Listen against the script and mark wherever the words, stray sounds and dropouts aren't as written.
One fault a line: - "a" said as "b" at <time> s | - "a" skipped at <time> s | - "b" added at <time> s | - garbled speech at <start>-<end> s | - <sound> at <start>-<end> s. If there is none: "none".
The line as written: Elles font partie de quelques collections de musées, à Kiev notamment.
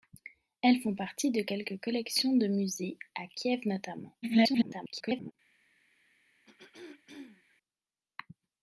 - garbled speech at 4.2-5.3 s
- throat clearing at 6.4-7.6 s